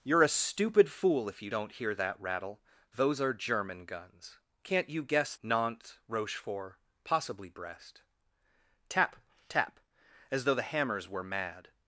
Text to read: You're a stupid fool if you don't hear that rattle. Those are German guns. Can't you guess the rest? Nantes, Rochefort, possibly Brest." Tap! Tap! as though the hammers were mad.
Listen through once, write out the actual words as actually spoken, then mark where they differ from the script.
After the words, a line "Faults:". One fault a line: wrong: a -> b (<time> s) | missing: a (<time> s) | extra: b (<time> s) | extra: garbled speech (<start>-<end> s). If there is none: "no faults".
You're a stupid fool if you don't hear that rattle. Those are German guns. Can't you guess? Nantes, Rochefort, possibly Brest." Tap! Tap! as though the hammers were mad.
Faults:
missing: the rest (5.3 s)